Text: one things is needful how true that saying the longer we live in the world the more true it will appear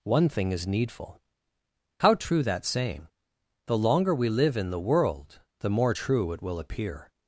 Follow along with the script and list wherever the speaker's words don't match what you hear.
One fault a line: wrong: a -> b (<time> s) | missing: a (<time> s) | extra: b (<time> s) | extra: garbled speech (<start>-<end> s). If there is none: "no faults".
wrong: things -> thing (0.3 s)